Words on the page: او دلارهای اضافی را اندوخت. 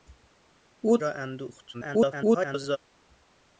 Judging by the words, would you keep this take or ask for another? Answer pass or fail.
fail